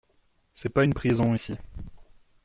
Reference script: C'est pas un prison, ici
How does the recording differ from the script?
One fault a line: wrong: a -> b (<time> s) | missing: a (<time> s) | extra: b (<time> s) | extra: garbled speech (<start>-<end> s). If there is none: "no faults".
wrong: un -> une (0.8 s)